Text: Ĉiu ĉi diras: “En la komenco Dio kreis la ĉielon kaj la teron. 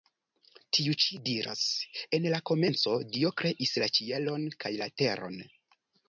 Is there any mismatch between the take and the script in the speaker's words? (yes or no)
yes